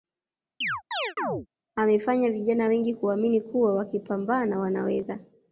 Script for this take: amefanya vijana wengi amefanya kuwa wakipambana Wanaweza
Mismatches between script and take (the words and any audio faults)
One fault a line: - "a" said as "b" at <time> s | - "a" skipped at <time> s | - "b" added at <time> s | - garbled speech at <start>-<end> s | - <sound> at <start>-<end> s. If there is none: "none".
- chirp at 0.6-1.5 s
- "amefanya" said as "kuamini" at 2.9 s